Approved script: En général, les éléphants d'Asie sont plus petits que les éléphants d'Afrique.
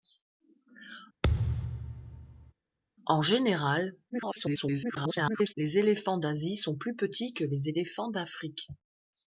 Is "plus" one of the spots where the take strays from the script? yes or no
no